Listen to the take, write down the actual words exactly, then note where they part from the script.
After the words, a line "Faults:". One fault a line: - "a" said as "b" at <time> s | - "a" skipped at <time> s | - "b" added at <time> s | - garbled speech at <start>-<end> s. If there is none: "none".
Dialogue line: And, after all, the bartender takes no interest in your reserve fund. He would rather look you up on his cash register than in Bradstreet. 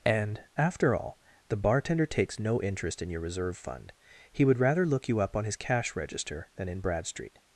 And, after all, the bartender takes no interest in your reserve fund. He would rather look you up on his cash register than in Bradstreet.
Faults:
none